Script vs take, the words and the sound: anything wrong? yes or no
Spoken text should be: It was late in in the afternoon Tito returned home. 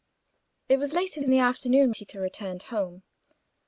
no